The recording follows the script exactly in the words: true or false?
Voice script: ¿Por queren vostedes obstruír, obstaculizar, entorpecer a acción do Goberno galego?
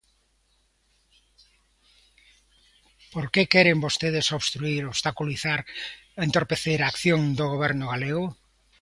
false